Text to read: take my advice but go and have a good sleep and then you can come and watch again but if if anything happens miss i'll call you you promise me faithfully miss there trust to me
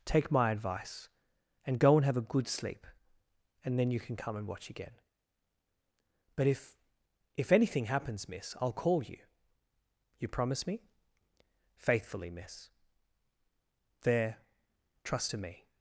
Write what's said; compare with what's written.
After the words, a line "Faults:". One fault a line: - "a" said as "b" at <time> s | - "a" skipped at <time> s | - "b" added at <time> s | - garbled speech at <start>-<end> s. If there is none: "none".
take my advice and go and have a good sleep and then you can come and watch again but if if anything happens miss i'll call you you promise me faithfully miss there trust to me
Faults:
- "but" said as "and" at 1.6 s